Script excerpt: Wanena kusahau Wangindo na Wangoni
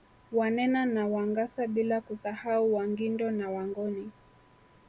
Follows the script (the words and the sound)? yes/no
no